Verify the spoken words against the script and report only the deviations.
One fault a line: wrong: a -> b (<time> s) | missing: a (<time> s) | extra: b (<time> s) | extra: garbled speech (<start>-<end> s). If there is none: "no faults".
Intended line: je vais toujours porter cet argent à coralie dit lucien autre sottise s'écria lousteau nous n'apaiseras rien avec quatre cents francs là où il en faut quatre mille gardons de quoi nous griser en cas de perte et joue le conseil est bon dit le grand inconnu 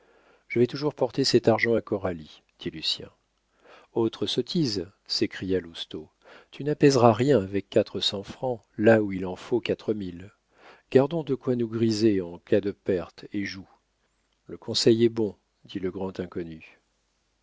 wrong: nous -> tu (6.5 s)